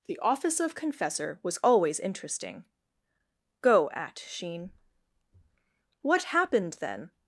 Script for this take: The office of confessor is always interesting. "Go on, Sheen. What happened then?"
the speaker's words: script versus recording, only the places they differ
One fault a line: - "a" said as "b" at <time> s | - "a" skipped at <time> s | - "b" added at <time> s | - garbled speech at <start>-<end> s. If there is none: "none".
- "is" said as "was" at 1.4 s
- "on" said as "at" at 3.9 s